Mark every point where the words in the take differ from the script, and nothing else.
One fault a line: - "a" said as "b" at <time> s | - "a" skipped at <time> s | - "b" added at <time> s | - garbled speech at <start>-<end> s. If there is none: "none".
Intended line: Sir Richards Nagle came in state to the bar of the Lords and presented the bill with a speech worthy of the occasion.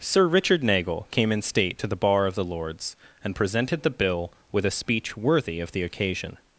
- "Richards" said as "Richard" at 0.3 s